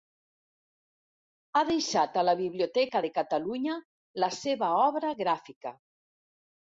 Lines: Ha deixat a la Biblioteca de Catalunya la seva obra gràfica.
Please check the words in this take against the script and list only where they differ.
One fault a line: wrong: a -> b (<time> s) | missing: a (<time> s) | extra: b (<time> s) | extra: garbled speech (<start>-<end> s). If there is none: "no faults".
no faults